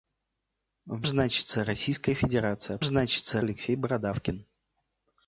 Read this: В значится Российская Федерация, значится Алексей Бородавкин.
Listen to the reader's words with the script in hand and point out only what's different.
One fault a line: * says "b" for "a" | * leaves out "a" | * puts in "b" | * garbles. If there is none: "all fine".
all fine